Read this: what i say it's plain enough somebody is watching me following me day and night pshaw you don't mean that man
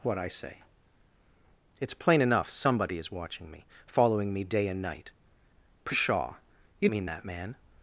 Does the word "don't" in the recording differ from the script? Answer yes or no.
yes